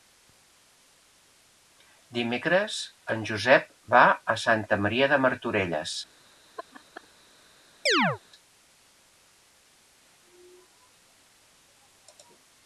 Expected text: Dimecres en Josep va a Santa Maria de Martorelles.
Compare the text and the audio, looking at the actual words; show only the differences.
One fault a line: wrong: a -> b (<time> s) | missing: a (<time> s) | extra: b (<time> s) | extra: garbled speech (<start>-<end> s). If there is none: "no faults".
no faults